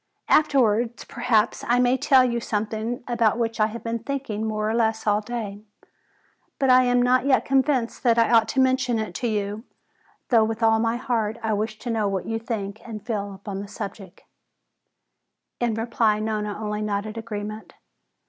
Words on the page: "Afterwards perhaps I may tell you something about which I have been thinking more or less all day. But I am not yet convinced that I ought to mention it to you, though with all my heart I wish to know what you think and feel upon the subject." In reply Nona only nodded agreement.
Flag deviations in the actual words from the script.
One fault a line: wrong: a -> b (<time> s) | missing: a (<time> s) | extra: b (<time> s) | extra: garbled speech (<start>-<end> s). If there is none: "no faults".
no faults